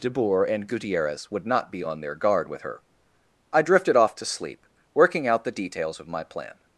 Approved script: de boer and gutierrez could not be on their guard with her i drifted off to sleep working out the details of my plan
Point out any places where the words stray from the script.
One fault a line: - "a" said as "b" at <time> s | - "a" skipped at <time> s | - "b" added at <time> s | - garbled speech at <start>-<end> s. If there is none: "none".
- "could" said as "would" at 1.3 s